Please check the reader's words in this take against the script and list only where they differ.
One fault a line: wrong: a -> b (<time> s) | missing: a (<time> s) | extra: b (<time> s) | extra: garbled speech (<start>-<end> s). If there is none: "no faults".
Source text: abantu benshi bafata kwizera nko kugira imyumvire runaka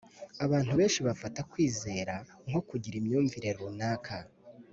no faults